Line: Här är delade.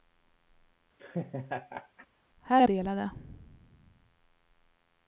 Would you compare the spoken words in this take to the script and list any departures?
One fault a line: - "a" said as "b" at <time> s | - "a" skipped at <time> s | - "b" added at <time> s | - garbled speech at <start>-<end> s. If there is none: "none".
none